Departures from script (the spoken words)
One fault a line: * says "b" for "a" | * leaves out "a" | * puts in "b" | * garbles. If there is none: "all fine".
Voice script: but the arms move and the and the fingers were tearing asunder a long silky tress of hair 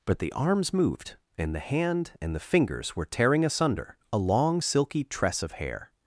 * says "moved" for "move"
* puts in "hand"